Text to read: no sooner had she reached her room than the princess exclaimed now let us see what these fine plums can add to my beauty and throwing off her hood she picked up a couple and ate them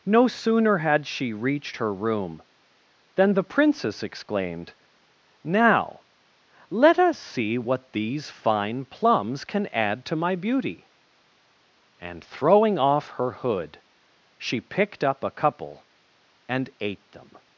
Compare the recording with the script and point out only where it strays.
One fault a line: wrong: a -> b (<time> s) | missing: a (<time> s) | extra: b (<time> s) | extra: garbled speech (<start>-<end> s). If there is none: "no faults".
no faults